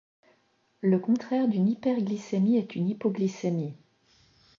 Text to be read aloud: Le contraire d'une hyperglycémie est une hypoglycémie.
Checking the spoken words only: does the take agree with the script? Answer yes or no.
yes